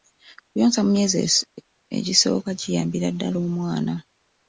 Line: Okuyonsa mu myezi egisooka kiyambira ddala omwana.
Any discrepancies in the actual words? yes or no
no